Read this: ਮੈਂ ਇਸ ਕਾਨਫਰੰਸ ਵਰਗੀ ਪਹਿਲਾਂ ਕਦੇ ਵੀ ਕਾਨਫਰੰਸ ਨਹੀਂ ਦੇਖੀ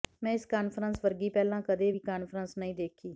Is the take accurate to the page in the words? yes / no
yes